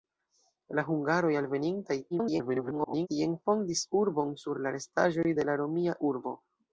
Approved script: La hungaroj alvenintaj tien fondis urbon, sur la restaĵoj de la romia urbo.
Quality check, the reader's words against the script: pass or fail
fail